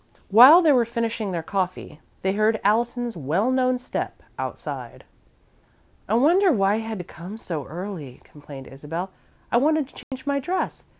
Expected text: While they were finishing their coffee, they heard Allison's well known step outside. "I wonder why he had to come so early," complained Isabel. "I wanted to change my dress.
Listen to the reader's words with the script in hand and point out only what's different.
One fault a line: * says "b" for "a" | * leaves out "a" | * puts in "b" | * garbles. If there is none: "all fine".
all fine